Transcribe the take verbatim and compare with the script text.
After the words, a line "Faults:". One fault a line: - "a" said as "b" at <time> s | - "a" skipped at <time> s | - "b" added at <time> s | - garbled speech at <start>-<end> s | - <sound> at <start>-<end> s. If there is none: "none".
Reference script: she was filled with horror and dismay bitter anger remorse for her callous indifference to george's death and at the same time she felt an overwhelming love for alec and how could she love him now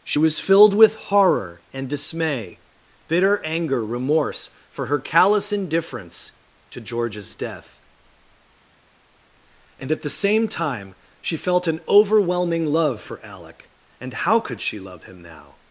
she was filled with horror and dismay bitter anger remorse for her callous indifference to george's death and at the same time she felt an overwhelming love for alec and how could she love him now
Faults:
none